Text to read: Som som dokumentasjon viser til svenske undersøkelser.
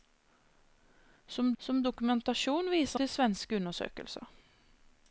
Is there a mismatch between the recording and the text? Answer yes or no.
no